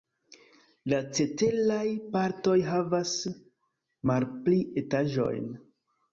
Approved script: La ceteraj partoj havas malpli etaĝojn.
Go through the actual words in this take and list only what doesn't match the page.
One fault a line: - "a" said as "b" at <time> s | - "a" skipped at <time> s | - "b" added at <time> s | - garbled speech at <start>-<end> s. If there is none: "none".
none